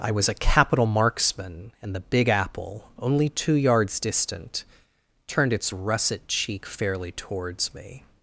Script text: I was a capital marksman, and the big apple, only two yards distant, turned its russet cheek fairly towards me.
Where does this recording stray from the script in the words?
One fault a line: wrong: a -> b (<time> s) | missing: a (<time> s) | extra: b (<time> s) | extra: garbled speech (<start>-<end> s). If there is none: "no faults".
no faults